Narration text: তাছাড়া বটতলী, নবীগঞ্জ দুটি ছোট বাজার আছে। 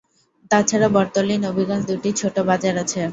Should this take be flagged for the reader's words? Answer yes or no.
no